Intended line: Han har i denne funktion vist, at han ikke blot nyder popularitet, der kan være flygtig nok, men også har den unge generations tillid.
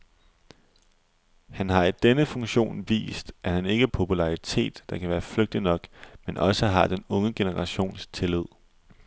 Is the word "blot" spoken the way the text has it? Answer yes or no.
no